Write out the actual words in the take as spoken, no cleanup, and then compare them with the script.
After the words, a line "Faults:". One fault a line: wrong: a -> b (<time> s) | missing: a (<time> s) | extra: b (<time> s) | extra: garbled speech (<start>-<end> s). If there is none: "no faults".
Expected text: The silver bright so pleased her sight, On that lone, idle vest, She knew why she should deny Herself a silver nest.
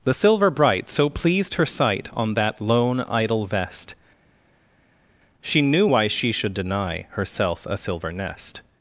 The silver bright so pleased her sight, On that lone, idle vest, She knew why she should deny Herself a silver nest.
Faults:
no faults